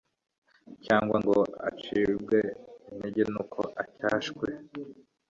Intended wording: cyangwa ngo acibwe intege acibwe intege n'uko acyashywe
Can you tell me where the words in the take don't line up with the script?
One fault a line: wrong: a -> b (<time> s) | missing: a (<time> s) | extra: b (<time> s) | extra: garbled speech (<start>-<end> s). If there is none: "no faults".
missing: acibwe intege (3.2 s)